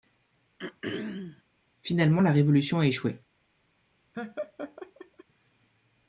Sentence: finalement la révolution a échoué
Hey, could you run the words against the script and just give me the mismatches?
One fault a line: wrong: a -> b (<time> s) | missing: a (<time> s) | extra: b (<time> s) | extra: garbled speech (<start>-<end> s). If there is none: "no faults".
no faults